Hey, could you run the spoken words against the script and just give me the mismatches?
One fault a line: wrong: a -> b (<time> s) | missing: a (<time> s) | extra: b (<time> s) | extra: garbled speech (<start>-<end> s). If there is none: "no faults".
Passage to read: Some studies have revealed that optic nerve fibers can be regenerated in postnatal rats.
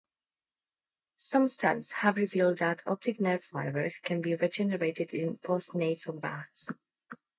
no faults